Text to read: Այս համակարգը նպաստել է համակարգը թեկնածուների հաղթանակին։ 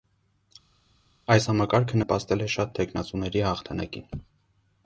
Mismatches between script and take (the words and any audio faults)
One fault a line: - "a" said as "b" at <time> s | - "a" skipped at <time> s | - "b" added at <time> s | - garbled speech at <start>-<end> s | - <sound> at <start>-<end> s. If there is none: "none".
- "համակարգը" said as "շատ" at 2.6 s